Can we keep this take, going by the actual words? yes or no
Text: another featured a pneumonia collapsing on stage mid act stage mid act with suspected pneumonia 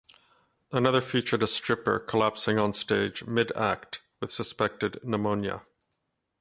no